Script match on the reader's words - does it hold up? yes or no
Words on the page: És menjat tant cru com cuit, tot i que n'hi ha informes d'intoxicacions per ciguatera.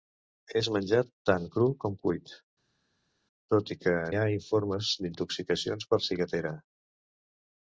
no